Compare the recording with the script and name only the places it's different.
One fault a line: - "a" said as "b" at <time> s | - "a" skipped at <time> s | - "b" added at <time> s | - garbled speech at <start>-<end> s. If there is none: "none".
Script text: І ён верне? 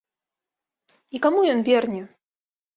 - "каму" added at 1.3 s